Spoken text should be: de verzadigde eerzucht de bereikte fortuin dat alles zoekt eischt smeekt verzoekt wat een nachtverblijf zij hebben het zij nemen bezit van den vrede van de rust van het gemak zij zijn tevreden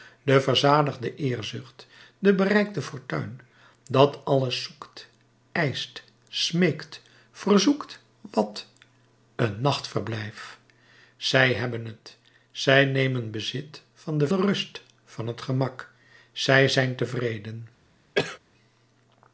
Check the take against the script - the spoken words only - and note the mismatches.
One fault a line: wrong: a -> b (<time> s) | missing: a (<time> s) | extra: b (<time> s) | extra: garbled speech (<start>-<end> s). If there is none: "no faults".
missing: vrede van (14.3 s)